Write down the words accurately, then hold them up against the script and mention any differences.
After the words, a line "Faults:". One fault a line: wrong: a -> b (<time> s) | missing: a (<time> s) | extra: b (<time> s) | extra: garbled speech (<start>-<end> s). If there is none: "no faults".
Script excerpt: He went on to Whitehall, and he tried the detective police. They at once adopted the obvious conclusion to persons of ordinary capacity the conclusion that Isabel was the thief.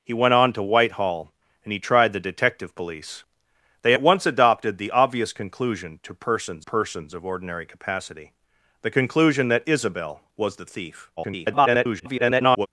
He went on to Whitehall, and he tried the detective police. They at once adopted the obvious conclusion to persons persons of ordinary capacity the conclusion that Isabel was the thief. [garbled]
Faults:
extra: persons (6.6 s)
extra: garbled speech (11.2-12.7 s)